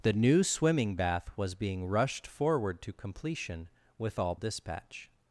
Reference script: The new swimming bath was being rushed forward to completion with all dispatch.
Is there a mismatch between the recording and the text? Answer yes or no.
no